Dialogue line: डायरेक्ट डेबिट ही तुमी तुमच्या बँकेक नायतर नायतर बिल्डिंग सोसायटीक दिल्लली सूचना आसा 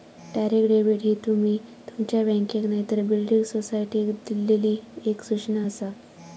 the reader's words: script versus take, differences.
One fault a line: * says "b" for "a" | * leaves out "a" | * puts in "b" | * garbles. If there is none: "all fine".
* leaves out "नायतर"
* puts in "एक"